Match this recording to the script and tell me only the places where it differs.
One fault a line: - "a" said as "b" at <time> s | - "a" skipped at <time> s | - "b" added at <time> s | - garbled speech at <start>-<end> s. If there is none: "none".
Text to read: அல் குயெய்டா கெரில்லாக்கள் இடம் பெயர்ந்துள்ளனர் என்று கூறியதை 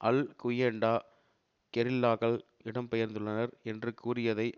none